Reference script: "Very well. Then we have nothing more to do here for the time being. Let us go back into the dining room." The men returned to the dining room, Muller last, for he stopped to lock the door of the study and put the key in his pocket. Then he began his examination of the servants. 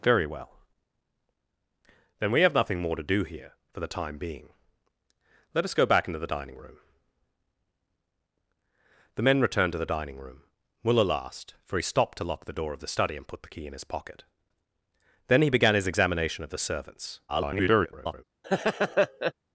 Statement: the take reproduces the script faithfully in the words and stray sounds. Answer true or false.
false